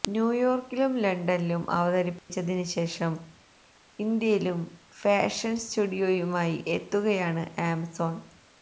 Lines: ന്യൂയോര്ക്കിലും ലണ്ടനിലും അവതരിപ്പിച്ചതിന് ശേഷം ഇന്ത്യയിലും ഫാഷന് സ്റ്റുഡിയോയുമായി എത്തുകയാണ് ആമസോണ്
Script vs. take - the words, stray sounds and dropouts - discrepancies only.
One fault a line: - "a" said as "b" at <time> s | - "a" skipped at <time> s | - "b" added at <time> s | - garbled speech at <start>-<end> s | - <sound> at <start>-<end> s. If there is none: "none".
- dropout at 2.2-2.3 s